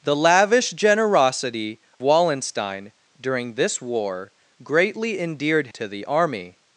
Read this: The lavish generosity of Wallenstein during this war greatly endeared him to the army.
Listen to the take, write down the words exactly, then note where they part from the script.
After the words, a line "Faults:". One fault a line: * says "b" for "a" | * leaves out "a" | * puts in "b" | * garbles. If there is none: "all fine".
The lavish generosity Wallenstein during this war greatly endeared to the army.
Faults:
* leaves out "of"
* leaves out "him"